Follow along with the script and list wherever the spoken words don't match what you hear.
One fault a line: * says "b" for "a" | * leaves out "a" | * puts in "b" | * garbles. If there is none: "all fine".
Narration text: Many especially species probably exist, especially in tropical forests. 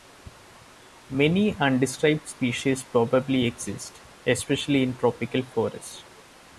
* says "undescribed" for "especially"